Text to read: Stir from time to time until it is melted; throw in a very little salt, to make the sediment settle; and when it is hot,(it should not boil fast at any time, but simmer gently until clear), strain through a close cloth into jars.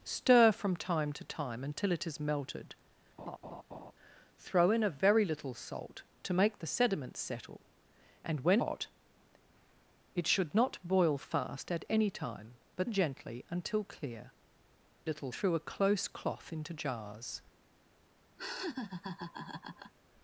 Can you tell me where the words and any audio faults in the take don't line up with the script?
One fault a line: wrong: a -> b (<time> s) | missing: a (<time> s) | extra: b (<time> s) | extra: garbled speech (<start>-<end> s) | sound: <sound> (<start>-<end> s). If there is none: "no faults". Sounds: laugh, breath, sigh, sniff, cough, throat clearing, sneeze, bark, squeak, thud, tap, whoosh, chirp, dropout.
sound: laugh (3.2-3.9 s)
missing: it is (8.6 s)
missing: simmer (12.9 s)
wrong: strain -> little (15.0 s)
sound: laugh (18.4-19.9 s)